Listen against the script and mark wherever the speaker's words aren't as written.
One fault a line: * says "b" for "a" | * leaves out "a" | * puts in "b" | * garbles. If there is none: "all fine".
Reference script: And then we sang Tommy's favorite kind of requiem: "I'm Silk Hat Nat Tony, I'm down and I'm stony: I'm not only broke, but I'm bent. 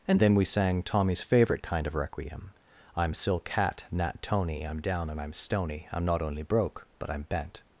all fine